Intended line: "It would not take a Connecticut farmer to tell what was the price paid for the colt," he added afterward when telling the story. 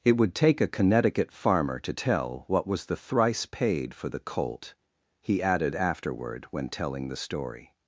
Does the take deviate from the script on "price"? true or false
true